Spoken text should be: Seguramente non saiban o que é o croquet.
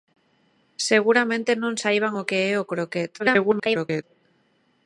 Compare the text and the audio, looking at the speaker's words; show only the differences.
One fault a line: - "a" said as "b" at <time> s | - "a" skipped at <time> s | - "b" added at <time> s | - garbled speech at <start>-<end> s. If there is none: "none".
- garbled speech at 3.2-4.0 s